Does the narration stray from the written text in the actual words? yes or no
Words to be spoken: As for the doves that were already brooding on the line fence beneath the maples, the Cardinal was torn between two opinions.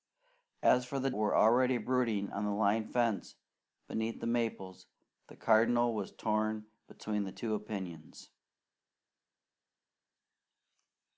yes